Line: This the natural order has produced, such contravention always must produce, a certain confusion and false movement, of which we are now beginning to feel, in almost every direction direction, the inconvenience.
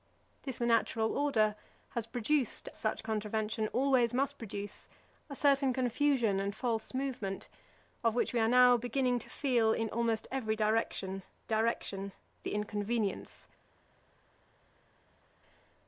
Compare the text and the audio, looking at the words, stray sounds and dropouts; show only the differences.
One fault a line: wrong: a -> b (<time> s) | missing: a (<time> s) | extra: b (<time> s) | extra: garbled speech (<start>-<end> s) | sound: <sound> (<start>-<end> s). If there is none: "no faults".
no faults